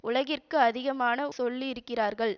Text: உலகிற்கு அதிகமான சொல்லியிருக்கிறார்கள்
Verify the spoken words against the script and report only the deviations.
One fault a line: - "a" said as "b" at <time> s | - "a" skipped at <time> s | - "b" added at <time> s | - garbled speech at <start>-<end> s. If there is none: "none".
none